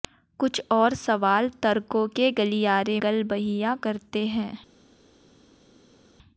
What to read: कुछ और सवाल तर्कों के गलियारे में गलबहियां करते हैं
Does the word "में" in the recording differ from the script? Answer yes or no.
yes